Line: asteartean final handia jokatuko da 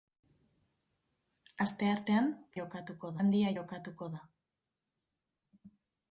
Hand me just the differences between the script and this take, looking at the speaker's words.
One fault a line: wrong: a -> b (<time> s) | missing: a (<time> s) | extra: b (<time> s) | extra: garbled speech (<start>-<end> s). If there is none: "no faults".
wrong: final -> jokatuko (2.6 s)